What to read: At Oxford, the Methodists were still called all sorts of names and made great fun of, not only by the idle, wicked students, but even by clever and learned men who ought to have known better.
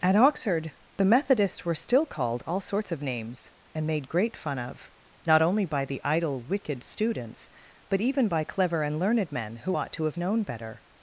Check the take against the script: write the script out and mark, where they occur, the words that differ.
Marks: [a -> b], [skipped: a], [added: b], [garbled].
At Oxford, the Methodists were still called all sorts of names and made great fun of, not only by the idle, wicked students, but even by clever and learned men who ought to have known better.